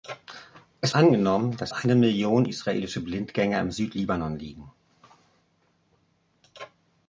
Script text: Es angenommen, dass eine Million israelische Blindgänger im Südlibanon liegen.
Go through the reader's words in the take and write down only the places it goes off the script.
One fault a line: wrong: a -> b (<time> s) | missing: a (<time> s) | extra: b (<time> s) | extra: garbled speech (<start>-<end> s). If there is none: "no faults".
no faults